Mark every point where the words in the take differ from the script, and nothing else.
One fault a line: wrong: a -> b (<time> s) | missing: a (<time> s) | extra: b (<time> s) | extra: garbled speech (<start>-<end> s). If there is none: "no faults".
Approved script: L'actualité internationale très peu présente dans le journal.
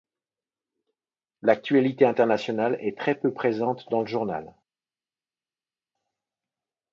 extra: est (2.8 s)